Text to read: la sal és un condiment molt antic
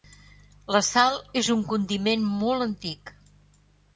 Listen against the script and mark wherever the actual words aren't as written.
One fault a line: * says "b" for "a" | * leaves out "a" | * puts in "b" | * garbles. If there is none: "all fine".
all fine